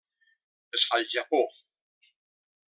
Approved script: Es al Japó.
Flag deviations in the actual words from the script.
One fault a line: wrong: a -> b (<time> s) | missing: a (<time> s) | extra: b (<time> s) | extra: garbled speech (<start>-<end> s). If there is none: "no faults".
no faults